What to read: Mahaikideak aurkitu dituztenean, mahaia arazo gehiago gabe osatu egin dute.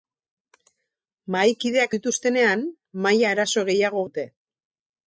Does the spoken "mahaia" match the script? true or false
true